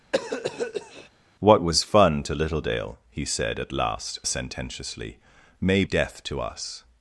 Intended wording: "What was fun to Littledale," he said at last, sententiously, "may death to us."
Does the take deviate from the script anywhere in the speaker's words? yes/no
no